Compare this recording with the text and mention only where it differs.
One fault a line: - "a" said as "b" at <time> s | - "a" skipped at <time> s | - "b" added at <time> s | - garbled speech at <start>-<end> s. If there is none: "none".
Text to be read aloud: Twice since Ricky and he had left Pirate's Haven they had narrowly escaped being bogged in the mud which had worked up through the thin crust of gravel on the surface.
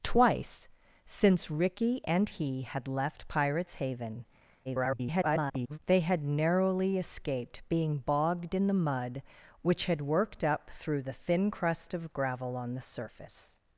- garbled speech at 4.6-5.8 s